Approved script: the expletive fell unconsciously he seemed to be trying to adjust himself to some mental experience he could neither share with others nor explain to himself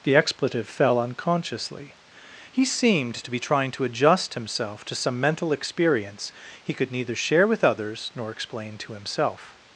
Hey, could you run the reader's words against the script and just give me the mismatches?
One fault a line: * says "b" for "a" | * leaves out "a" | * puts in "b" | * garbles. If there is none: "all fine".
all fine